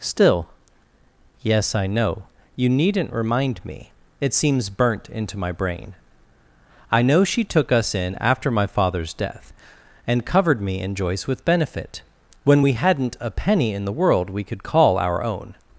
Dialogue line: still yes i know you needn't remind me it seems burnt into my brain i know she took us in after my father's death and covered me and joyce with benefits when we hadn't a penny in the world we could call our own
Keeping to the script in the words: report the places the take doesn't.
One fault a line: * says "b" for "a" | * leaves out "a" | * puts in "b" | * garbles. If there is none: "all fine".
* says "benefit" for "benefits"